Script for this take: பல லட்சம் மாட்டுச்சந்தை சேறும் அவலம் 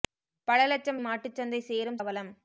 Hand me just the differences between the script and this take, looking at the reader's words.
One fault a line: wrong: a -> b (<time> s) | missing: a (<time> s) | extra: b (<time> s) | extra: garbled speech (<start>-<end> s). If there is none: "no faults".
no faults